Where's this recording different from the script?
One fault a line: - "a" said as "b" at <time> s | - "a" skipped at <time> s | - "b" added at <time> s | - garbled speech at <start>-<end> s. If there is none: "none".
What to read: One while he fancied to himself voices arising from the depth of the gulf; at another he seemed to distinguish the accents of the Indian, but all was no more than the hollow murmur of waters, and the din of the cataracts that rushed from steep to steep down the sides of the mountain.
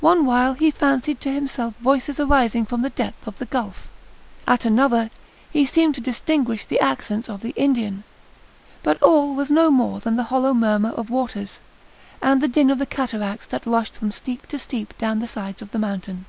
none